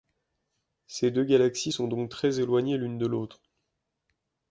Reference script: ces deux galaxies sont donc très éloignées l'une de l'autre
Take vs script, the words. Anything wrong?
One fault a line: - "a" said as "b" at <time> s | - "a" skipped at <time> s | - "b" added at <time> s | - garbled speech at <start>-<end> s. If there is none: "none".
none